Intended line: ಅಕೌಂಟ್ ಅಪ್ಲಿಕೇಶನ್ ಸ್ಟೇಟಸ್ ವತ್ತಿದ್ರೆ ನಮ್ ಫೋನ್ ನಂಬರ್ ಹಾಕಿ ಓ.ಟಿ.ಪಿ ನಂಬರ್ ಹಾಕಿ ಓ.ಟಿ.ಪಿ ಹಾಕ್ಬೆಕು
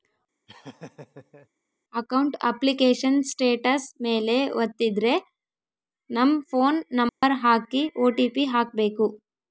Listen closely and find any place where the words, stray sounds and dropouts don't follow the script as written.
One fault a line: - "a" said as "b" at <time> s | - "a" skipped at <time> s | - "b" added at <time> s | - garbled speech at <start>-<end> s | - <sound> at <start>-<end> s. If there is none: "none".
- laugh at 0.5-1.5 s
- "ಮೇಲೆ" added at 4.0 s
- dropout at 7.1-7.2 s
- "ನಂಬರ್ ಹಾಕಿ ಓ.ಟಿ.ಪಿ" skipped at 8.4 s